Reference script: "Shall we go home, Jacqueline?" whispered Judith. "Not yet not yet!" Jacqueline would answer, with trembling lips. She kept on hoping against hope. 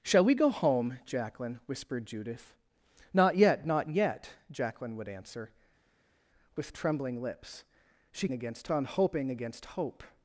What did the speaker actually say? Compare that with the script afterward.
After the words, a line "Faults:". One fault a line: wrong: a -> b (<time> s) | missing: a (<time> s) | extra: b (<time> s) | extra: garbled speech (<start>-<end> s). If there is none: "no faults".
"Shall we go home, Jacqueline?" whispered Judith. "Not yet not yet!" Jacqueline would answer, with trembling lips. She against on hoping against hope.
Faults:
wrong: kept -> against (8.3 s)